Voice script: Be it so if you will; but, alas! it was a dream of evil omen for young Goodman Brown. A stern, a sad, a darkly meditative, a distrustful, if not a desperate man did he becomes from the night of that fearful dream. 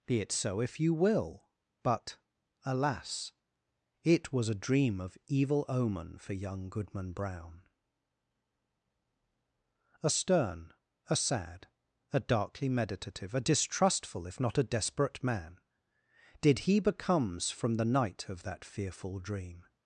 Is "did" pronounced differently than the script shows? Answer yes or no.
no